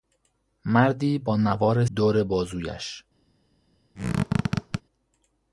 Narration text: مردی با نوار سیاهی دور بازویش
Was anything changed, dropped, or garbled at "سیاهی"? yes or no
yes